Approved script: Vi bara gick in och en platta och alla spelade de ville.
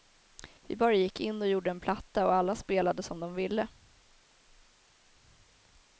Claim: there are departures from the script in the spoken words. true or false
true